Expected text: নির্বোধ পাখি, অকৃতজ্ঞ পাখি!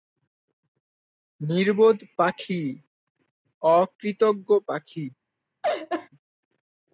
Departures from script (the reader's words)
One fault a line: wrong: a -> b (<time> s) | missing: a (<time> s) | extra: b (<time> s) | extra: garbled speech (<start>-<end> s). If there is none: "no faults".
no faults